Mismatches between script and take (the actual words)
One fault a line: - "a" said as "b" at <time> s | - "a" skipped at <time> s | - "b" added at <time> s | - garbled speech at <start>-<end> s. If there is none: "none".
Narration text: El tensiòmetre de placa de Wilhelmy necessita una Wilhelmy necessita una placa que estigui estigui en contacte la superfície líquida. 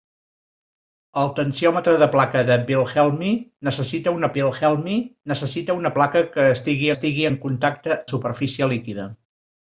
none